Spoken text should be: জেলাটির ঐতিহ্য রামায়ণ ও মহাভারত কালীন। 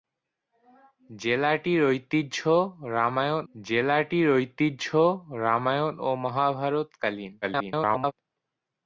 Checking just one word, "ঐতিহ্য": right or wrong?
right